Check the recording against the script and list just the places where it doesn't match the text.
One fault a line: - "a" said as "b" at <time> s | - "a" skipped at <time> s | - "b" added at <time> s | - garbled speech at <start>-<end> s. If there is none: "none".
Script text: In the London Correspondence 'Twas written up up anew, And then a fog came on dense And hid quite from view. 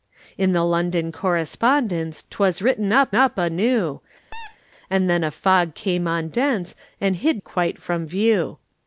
none